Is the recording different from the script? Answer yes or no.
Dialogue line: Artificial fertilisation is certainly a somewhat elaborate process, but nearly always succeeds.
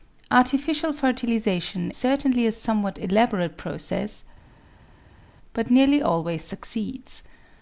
yes